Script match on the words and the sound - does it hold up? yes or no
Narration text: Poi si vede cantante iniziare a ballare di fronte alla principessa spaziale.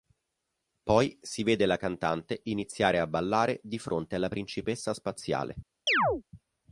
no